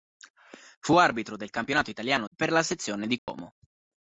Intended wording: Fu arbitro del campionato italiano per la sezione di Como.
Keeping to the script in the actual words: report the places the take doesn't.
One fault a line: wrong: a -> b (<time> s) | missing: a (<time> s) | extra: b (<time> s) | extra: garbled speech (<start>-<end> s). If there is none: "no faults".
no faults